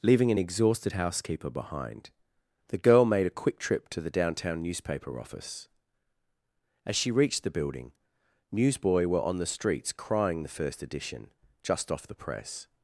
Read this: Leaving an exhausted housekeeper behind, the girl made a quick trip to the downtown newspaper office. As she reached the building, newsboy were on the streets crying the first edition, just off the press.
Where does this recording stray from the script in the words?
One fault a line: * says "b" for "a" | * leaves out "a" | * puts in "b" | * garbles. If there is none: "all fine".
all fine